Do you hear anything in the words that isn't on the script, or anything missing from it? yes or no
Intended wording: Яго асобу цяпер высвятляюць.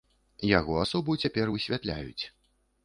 no